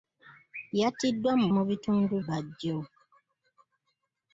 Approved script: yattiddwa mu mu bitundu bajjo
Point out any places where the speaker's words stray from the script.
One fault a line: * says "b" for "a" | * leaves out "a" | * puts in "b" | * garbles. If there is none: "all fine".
all fine